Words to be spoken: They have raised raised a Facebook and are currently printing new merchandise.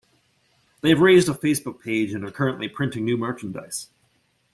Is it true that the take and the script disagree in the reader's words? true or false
true